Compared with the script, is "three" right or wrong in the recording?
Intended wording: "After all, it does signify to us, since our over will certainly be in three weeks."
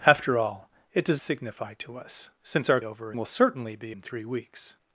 right